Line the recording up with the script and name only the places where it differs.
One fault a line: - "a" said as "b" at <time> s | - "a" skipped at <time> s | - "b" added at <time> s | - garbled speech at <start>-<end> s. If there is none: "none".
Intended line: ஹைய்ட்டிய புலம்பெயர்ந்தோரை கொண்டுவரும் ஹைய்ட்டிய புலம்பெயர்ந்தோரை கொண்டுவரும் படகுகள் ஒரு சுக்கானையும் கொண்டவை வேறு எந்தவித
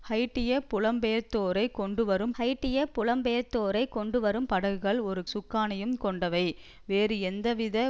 none